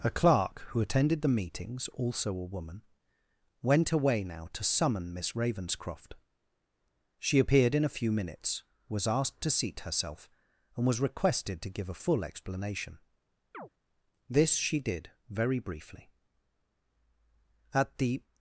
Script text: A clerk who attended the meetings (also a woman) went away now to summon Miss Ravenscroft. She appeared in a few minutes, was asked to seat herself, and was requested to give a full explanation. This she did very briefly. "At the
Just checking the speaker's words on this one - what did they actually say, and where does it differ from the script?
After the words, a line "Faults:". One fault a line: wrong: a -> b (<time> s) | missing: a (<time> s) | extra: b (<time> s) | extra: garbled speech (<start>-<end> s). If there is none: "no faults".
A clerk who attended the meetings (also a woman) went away now to summon Miss Ravenscroft. She appeared in a few minutes, was asked to seat herself, and was requested to give a full explanation. This she did very briefly. "At the
Faults:
no faults